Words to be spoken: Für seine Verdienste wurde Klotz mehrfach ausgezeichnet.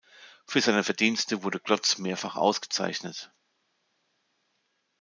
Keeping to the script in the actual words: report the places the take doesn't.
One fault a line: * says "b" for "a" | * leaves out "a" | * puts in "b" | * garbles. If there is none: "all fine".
all fine